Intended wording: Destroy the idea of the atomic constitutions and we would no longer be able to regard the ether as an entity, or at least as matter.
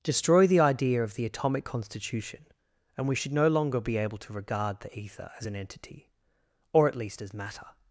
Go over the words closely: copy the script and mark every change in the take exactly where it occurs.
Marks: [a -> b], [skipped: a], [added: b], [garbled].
Destroy the idea of the atomic [constitutions -> constitution] and we [would -> should] no longer be able to regard the ether as an entity, or at least as matter.